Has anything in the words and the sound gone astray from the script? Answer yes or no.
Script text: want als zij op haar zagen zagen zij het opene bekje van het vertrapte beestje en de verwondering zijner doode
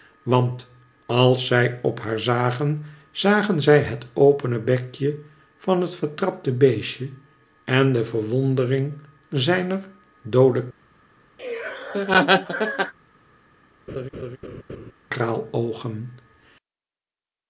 yes